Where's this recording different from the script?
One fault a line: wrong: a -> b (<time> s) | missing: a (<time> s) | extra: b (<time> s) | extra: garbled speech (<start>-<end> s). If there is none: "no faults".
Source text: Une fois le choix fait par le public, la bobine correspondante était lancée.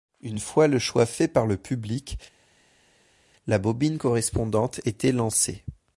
no faults